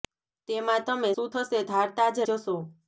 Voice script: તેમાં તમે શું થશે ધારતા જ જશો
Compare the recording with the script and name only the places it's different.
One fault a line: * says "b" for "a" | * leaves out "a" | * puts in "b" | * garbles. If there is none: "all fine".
all fine